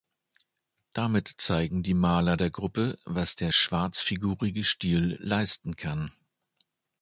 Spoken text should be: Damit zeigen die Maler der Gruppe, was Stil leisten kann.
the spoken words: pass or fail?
fail